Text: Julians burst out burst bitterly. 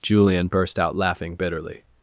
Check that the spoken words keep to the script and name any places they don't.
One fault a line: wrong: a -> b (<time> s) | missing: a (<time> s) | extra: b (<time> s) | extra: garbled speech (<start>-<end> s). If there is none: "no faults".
wrong: Julians -> Julian (0.0 s)
wrong: burst -> laughing (0.9 s)